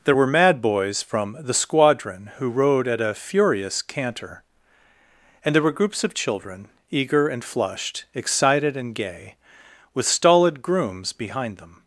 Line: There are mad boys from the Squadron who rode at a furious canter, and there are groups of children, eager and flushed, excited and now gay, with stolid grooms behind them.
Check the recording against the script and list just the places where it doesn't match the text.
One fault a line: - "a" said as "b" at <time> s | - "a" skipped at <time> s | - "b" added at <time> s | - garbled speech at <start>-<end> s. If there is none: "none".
- "are" said as "were" at 0.1 s
- "are" said as "were" at 5.6 s
- "now" skipped at 8.9 s